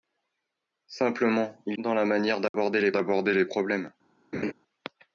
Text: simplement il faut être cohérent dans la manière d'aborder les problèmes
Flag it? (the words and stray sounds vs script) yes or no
yes